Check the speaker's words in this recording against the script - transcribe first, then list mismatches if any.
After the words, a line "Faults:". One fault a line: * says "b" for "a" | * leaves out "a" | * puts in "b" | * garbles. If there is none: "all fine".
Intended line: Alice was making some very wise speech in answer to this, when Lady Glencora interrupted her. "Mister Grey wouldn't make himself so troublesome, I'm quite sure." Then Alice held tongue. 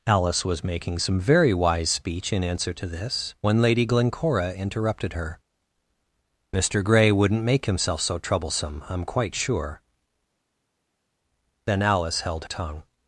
Alice was making some very wise speech in answer to this, when Lady Glencora interrupted her. "Mister Grey wouldn't make himself so troublesome, I'm quite sure." Then Alice held tongue.
Faults:
all fine